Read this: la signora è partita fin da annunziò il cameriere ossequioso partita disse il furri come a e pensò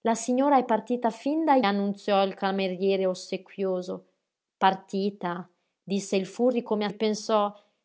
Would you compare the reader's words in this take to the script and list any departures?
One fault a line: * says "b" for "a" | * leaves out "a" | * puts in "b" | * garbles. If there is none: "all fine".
all fine